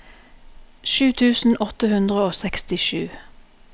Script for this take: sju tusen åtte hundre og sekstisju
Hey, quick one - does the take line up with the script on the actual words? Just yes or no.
yes